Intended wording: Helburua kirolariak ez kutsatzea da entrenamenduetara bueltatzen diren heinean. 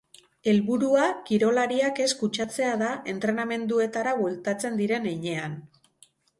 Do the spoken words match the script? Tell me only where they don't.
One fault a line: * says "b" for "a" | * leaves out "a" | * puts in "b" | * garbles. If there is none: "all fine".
all fine